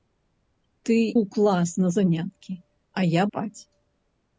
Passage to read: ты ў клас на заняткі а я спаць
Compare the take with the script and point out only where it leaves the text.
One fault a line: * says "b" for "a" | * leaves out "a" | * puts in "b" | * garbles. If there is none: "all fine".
all fine